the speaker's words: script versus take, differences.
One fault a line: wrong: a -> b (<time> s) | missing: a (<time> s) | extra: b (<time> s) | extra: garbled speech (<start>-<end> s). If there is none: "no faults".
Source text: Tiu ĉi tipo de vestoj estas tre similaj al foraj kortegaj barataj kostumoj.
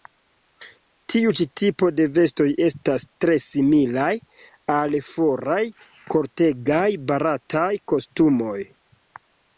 no faults